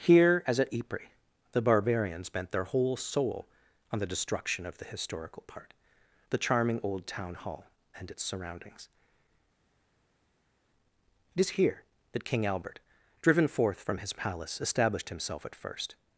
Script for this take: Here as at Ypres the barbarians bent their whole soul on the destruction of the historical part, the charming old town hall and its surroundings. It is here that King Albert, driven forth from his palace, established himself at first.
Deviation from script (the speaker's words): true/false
false